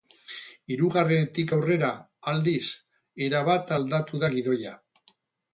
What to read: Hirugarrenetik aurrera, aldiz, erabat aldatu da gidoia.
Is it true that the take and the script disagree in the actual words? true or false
false